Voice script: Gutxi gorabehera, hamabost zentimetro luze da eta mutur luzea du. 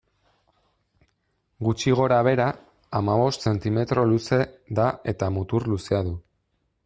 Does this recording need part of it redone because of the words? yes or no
no